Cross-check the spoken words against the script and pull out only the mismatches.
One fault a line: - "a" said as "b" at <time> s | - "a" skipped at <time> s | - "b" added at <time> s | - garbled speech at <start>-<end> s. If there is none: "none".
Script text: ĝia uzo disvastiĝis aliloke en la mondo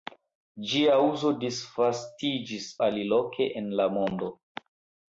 none